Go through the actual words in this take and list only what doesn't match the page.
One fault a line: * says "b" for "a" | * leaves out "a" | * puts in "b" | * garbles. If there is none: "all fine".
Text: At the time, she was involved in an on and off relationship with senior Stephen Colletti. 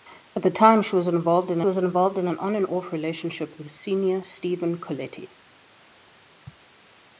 * puts in "was involved in"